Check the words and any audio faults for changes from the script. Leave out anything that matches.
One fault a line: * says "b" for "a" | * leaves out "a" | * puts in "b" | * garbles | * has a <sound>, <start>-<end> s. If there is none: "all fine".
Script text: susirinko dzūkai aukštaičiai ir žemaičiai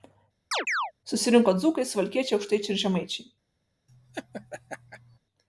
* has a chirp, 0.5-0.9 s
* puts in "suvalkiečiai"
* has a laugh, 3.9-5.2 s